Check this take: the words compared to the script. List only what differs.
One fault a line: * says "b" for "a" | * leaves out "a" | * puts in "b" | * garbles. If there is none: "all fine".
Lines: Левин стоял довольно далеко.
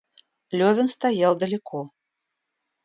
* leaves out "довольно"